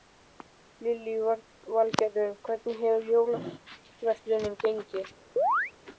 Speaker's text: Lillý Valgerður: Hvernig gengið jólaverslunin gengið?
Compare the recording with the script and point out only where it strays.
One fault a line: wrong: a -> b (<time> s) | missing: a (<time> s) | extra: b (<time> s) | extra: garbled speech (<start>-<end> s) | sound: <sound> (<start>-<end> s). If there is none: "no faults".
wrong: gengið -> hefur (2.9 s)
sound: chirp (5.4-5.7 s)